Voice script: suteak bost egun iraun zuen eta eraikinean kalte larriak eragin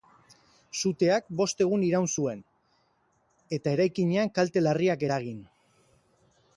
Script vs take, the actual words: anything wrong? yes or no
no